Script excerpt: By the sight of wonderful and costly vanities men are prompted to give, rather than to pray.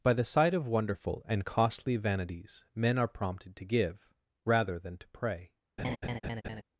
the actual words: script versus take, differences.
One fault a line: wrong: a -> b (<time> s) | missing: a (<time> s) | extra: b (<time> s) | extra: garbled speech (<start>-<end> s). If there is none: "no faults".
no faults